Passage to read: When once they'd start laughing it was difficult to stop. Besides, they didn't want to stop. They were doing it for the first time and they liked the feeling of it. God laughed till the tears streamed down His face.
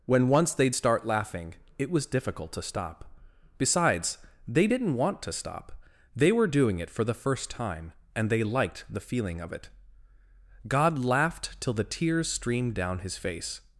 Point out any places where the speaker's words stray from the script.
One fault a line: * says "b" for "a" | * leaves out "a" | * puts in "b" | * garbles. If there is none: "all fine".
all fine